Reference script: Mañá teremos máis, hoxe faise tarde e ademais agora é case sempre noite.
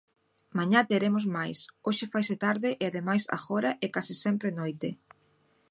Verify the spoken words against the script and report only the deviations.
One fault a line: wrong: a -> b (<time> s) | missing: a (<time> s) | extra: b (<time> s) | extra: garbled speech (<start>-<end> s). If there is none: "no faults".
no faults